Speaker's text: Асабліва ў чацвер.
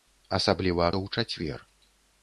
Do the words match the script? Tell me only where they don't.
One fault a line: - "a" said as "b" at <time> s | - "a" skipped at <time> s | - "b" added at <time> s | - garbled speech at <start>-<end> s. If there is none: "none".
none